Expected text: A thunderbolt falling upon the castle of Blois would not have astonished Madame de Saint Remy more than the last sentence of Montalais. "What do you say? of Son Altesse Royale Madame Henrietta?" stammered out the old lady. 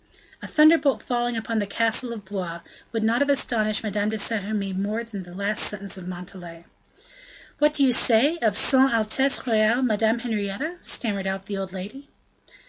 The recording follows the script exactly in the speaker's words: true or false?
true